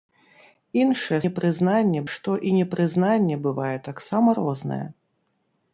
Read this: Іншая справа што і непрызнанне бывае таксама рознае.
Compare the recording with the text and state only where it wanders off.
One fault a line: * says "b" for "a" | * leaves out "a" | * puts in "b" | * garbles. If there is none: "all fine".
* says "непрызнанне" for "справа"